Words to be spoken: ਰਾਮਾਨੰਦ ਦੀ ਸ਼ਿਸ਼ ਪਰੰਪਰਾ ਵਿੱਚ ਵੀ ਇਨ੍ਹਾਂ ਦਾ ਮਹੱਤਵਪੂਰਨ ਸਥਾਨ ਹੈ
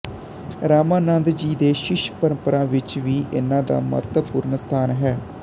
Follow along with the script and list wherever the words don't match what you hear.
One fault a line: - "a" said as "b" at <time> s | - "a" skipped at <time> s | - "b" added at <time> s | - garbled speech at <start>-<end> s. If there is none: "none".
- "ਜੀ" added at 1.3 s